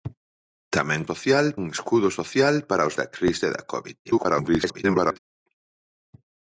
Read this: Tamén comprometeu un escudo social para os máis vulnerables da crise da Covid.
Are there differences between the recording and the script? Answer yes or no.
yes